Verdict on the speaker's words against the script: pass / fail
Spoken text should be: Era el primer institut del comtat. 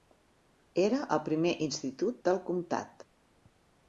pass